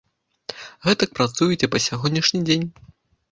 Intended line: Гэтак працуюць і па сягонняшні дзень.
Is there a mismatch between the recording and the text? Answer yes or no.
no